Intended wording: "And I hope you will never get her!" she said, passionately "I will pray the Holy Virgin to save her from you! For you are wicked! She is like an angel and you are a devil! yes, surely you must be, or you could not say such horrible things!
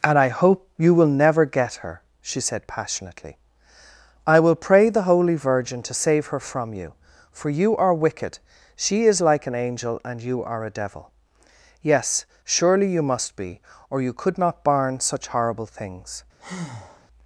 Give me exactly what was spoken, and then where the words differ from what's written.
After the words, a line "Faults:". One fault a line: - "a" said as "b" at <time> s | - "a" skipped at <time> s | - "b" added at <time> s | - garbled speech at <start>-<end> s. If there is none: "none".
"And I hope you will never get her!" she said, passionately "I will pray the Holy Virgin to save her from you! For you are wicked! She is like an angel and you are a devil! yes, surely you must be, or you could not barn such horrible things!
Faults:
- "say" said as "barn" at 14.6 s